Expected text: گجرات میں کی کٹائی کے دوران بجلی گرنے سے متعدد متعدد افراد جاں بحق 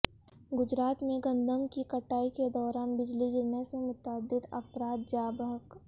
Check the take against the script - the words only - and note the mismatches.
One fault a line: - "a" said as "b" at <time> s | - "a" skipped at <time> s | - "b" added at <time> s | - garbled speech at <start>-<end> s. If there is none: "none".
- "گندم" added at 1.2 s
- "متعدد" skipped at 4.4 s